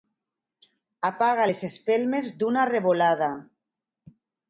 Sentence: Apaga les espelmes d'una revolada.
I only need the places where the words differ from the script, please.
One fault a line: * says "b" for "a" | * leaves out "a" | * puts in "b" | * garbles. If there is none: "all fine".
all fine